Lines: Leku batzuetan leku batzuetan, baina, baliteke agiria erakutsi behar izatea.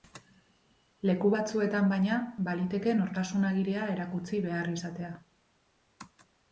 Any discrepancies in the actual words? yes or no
yes